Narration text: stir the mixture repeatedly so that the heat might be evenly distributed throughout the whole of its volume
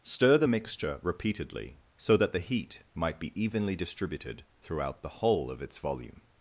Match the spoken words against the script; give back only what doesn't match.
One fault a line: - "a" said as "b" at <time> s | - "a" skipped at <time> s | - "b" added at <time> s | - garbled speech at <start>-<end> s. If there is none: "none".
none